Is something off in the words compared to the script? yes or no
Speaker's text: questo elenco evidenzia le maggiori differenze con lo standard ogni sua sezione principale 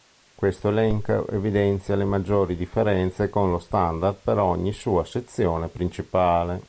yes